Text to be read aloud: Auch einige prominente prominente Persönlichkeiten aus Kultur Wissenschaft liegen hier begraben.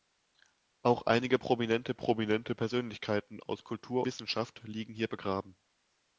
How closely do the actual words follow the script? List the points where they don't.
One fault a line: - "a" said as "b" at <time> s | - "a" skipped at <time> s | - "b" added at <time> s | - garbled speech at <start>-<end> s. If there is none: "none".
none